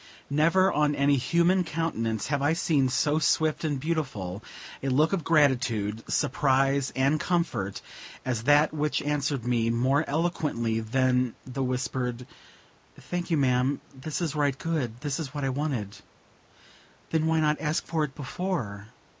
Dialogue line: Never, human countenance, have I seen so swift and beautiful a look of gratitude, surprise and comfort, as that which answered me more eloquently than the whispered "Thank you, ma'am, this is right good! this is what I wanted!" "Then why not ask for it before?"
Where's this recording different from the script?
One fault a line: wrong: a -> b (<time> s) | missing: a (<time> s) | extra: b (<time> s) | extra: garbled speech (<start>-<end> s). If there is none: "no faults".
extra: on any (0.7 s)